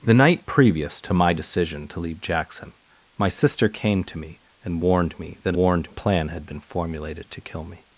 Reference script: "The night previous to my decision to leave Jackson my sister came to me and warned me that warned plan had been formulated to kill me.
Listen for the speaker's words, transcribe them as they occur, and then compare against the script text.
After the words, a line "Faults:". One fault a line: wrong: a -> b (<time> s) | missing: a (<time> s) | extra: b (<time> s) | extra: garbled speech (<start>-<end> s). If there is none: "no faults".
"The night previous to my decision to leave Jackson my sister came to me and warned me that warned plan had been formulated to kill me.
Faults:
no faults